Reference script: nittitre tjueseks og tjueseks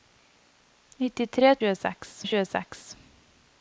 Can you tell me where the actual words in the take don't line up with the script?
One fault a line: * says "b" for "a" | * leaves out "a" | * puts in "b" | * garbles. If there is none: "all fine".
all fine